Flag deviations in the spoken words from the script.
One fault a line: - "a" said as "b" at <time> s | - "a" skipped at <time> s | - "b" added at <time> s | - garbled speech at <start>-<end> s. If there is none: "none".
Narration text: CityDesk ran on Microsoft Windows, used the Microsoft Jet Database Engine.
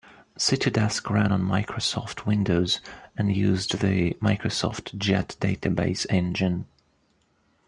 - "and" added at 3.2 s